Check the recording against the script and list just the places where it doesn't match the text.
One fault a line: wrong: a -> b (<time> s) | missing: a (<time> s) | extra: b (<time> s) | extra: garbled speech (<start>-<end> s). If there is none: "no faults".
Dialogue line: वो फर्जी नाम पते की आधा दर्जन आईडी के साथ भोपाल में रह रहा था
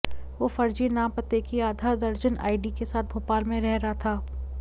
no faults